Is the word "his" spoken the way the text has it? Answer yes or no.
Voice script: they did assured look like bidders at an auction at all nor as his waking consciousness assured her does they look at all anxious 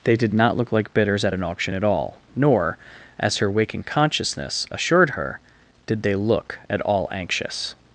no